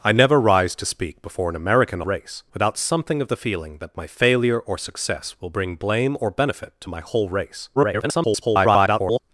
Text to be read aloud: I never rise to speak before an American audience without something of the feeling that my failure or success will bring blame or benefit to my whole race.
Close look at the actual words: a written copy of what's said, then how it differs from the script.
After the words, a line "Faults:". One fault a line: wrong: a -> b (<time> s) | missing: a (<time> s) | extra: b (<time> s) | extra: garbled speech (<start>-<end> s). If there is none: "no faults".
I never rise to speak before an American race without something of the feeling that my failure or success will bring blame or benefit to my whole race. [garbled]
Faults:
wrong: audience -> race (2.0 s)
extra: garbled speech (7.8-9.2 s)